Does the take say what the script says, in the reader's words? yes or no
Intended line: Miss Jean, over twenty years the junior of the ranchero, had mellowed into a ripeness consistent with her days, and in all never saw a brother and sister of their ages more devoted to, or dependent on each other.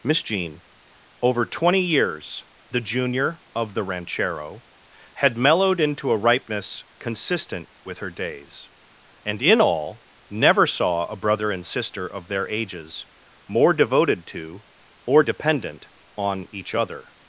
yes